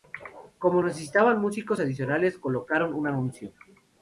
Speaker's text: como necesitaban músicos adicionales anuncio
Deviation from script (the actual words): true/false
true